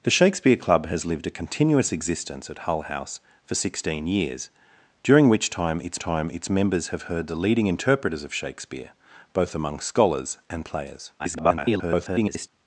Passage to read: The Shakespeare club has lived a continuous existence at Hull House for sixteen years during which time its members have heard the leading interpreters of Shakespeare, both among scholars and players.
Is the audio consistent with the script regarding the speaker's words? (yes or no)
no